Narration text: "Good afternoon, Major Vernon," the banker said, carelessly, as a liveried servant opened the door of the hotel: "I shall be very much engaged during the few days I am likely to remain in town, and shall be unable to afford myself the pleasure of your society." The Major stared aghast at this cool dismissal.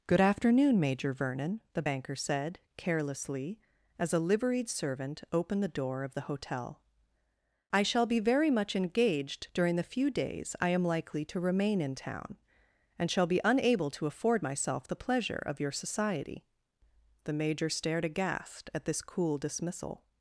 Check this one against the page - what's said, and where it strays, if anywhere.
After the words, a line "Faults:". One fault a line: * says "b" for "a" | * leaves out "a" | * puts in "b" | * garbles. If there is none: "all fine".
"Good afternoon, Major Vernon," the banker said, carelessly, as a liveried servant opened the door of the hotel: "I shall be very much engaged during the few days I am likely to remain in town, and shall be unable to afford myself the pleasure of your society." The Major stared aghast at this cool dismissal.
Faults:
all fine